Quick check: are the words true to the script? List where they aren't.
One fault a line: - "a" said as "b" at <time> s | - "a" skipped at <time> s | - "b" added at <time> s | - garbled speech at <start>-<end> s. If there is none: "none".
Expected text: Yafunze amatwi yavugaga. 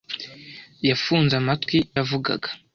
none